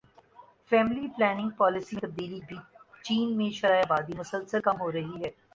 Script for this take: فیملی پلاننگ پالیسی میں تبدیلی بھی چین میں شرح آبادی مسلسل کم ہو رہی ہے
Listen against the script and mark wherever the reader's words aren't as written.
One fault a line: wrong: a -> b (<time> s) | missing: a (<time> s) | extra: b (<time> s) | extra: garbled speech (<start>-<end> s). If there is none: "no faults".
no faults